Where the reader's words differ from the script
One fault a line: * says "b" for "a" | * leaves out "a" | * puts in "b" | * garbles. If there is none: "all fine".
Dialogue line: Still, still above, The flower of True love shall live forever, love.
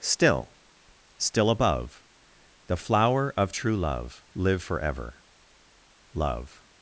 * leaves out "shall"